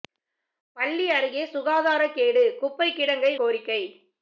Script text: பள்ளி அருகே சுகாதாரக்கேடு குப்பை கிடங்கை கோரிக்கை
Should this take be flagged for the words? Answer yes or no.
no